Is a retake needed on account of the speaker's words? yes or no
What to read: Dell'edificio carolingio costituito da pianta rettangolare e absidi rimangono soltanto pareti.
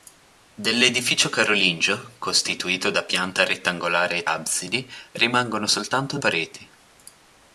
no